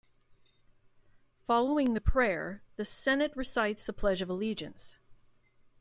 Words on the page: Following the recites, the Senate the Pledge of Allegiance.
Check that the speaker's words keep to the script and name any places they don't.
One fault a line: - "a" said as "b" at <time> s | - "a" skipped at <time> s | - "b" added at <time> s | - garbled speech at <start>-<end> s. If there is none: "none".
- "recites" said as "prayer" at 2.0 s
- "recites" added at 3.3 s